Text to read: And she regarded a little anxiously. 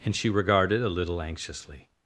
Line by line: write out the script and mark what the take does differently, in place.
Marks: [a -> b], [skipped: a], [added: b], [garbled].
And she regarded a little anxiously.